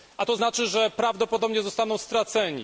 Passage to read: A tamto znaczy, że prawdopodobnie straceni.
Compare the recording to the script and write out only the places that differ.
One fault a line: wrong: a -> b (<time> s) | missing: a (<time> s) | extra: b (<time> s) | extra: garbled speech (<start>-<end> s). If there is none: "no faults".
wrong: tamto -> to (0.2 s)
extra: zostaną (1.6 s)